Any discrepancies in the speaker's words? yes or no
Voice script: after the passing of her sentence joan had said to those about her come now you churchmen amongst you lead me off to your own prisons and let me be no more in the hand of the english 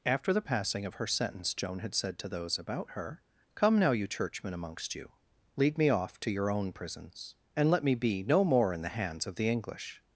yes